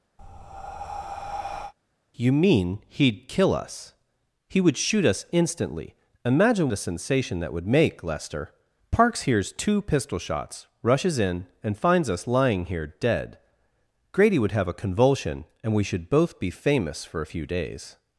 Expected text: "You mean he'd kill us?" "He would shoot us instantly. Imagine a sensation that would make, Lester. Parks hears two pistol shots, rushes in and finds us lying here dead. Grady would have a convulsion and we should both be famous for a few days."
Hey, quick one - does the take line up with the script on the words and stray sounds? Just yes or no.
no